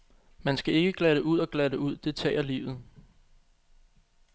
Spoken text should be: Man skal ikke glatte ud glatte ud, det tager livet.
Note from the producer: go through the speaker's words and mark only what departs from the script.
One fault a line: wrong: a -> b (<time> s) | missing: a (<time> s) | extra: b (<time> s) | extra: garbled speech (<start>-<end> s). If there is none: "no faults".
extra: og (1.4 s)